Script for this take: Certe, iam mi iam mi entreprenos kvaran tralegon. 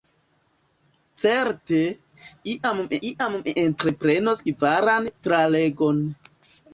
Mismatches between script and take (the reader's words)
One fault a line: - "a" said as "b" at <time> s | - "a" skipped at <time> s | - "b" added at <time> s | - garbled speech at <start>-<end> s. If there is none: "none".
none